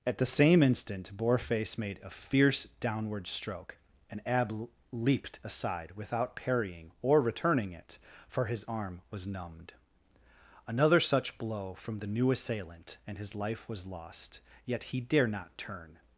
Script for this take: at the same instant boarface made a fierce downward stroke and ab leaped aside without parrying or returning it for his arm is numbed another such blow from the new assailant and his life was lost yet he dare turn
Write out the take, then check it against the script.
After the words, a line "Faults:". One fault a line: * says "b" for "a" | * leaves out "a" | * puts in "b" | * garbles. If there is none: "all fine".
at the same instant boarface made a fierce downward stroke and ab leaped aside without parrying or returning it for his arm was numbed another such blow from the new assailant and his life was lost yet he dare not turn
Faults:
* says "was" for "is"
* puts in "not"